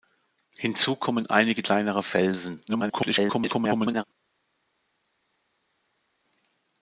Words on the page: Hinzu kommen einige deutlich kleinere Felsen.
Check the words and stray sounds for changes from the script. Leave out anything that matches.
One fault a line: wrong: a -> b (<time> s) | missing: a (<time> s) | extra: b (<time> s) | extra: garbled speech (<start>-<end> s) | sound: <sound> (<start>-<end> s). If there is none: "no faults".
missing: deutlich (1.6 s)
extra: garbled speech (2.7-4.0 s)